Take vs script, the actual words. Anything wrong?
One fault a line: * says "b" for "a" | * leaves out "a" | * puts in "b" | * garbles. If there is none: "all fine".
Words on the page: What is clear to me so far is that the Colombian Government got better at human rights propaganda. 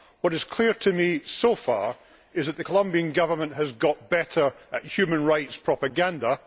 * puts in "has"